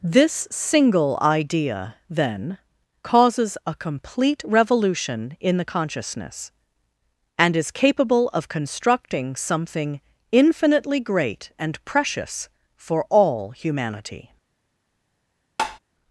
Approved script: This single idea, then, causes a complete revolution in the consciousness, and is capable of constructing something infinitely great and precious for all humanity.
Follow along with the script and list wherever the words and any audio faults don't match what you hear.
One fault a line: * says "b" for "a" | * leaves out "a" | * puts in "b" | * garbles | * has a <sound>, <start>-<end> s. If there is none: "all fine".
* has a tap, 15.6-15.8 s